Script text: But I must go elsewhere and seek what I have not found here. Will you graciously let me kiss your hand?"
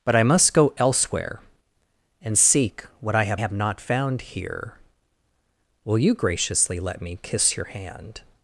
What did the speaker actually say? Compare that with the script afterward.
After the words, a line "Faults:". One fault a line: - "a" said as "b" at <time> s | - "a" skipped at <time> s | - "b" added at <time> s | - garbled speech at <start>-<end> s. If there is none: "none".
But I must go elsewhere and seek what I have have not found here. Will you graciously let me kiss your hand?"
Faults:
- "have" added at 3.4 s